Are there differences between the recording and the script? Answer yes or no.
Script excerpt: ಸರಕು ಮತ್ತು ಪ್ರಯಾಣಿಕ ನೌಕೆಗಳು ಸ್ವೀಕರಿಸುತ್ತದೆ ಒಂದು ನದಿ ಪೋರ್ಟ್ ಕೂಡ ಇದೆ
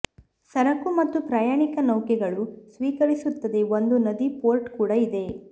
no